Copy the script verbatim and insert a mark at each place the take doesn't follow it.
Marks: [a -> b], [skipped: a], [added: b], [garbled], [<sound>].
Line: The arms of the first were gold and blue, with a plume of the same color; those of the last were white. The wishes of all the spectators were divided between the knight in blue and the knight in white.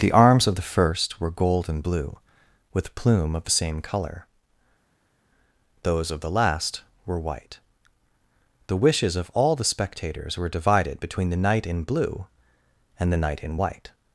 The arms of the first were gold and blue, with [skipped: a] plume of the same color; those of the last were white. The wishes of all the spectators were divided between the knight in blue and the knight in white.